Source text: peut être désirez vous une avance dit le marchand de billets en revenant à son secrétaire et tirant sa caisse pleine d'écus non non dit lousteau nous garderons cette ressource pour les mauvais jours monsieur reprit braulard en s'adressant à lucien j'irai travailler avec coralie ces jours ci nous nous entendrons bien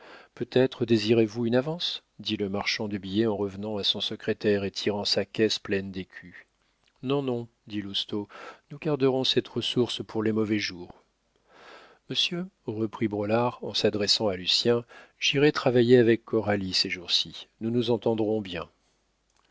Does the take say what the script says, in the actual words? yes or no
yes